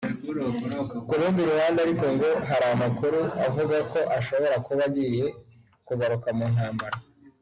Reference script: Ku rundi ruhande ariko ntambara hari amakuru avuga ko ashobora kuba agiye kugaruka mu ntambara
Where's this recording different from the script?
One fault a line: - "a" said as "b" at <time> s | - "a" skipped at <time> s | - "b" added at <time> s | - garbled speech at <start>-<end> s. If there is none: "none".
- "ntambara" said as "ngo" at 2.1 s